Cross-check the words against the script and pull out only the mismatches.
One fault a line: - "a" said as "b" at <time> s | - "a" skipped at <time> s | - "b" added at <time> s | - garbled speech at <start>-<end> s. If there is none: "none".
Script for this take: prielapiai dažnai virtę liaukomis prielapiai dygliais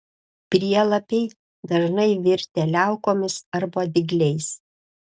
- "prielapiai" said as "arba" at 3.6 s